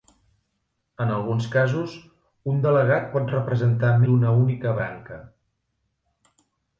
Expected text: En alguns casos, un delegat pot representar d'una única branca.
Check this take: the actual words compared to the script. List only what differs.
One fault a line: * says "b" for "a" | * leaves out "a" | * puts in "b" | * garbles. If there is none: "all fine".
all fine